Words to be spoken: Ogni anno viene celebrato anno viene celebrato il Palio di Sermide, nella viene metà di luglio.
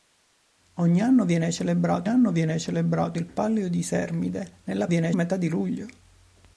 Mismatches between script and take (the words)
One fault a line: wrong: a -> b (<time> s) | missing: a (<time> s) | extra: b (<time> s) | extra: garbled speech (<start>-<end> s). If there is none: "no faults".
no faults